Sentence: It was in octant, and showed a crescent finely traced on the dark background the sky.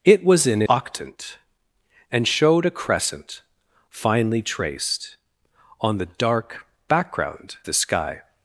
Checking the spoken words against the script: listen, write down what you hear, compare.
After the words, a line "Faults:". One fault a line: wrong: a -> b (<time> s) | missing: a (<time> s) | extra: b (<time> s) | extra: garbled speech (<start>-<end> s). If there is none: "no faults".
It was in octant, and showed a crescent finely traced on the dark background the sky.
Faults:
no faults